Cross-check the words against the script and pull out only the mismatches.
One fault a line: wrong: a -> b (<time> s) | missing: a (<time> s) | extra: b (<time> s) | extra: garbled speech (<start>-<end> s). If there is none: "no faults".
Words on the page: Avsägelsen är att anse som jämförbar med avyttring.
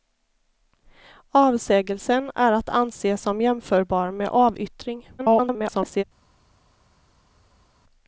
extra: garbled speech (5.2-6.0 s)